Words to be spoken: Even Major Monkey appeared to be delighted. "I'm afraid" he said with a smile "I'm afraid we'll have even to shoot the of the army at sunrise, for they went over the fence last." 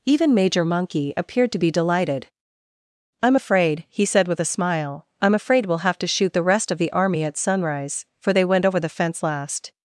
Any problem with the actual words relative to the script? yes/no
yes